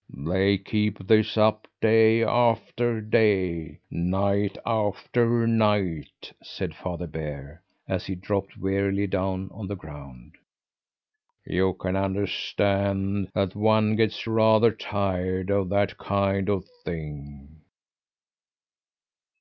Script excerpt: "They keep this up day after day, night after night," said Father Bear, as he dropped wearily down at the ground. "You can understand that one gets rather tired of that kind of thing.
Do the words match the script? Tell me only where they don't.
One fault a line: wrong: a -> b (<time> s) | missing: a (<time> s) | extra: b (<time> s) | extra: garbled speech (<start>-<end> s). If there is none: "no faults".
wrong: at -> on (9.5 s)